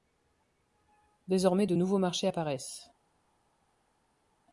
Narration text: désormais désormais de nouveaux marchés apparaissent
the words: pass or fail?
fail